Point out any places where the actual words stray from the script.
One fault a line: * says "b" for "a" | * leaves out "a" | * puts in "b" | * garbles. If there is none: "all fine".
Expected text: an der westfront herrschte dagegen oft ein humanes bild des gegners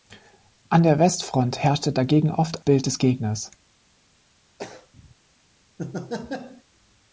* leaves out "ein humanes"